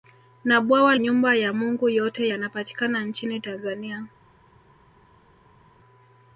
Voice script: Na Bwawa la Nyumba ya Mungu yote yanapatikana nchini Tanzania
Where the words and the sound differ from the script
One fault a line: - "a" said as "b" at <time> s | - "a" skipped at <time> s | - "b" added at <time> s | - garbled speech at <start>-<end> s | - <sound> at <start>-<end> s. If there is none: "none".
- "la" skipped at 0.9 s